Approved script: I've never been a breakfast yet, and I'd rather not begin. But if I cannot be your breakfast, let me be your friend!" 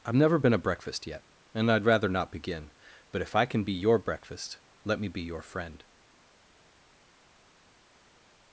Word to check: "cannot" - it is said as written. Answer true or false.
false